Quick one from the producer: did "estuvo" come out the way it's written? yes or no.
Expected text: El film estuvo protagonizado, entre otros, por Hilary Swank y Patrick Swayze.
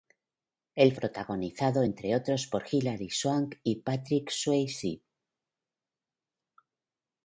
no